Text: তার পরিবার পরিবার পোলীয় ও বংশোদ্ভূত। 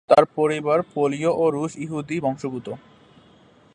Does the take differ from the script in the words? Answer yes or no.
yes